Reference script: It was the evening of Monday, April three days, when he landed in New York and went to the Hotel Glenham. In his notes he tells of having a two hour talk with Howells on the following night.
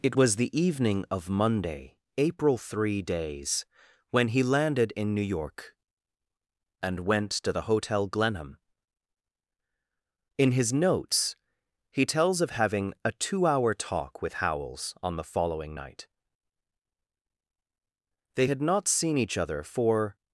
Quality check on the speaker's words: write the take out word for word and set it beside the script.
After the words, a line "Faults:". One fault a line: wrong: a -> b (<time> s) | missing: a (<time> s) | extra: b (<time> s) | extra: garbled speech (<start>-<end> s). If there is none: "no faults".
It was the evening of Monday, April three days, when he landed in New York and went to the Hotel Glenham. In his notes he tells of having a two hour talk with Howells on the following night. They had not seen each other for
Faults:
extra: They had not seen each other for (18.3 s)